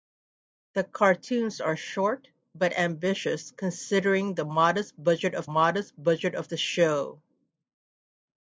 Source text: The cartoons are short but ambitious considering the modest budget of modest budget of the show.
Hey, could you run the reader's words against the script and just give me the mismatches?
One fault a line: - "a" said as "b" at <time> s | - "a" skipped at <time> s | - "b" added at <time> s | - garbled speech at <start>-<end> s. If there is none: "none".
none